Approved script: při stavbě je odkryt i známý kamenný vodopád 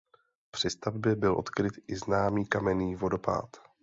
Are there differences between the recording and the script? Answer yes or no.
yes